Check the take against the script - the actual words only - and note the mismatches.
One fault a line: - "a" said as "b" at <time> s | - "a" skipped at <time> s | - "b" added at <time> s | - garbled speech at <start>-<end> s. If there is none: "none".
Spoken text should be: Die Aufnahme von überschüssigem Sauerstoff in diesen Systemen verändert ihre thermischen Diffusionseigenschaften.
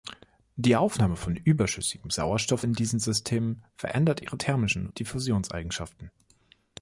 none